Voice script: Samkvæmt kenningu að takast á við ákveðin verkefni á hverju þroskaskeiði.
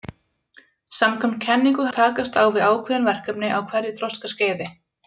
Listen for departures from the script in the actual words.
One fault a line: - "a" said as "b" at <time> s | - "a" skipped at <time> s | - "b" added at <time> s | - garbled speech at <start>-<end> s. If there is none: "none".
none